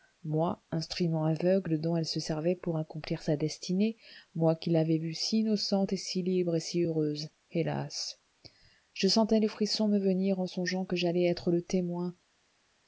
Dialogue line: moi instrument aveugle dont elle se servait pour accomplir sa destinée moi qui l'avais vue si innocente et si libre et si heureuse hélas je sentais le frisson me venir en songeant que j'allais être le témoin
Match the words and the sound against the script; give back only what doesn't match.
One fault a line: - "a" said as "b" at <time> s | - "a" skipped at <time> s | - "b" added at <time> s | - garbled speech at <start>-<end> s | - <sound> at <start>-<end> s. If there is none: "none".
none